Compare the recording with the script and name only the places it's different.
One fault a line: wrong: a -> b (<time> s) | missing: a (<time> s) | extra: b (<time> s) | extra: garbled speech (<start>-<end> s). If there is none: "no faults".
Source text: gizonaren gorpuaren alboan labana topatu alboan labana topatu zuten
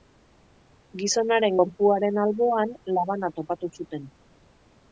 missing: alboan labana topatu (3.7 s)